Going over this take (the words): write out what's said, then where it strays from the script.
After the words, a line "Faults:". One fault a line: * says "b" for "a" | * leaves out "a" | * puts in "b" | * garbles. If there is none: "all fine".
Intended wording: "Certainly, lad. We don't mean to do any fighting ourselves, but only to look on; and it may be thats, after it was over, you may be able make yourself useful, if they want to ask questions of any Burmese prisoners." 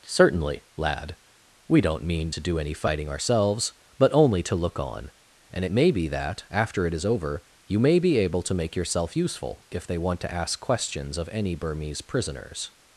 "Certainly, lad. We don't mean to do any fighting ourselves, but only to look on; and it may be that, after it is over, you may be able to make yourself useful, if they want to ask questions of any Burmese prisoners."
Faults:
* says "that" for "thats"
* says "is" for "was"
* puts in "to"